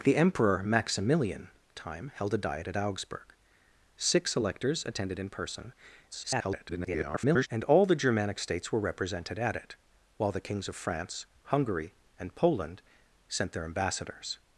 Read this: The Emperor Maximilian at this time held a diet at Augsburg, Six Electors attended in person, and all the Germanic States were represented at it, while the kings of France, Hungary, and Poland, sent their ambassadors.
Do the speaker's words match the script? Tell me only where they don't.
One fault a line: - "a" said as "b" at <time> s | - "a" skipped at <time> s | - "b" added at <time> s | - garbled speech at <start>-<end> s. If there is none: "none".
- "at this" skipped at 1.5 s
- garbled speech at 6.1-7.5 s